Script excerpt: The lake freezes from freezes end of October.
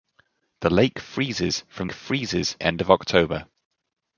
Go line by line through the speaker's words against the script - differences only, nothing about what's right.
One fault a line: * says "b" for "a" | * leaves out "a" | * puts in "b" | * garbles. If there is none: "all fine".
all fine